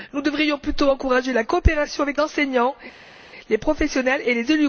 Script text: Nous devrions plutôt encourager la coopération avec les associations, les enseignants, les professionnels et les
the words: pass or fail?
fail